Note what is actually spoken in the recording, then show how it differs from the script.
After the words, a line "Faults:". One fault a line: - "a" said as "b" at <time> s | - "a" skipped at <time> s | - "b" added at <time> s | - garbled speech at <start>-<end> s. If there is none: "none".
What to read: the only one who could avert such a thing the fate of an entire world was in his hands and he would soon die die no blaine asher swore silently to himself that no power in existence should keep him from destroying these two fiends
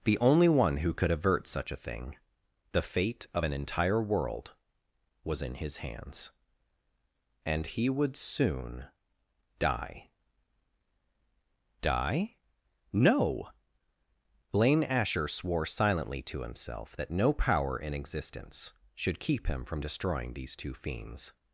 the only one who could avert such a thing the fate of an entire world was in his hands and he would soon die die no blaine asher swore silently to himself that no power in existence should keep him from destroying these two fiends
Faults:
none